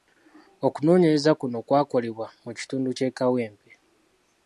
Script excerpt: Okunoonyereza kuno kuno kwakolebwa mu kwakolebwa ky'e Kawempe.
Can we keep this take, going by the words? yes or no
no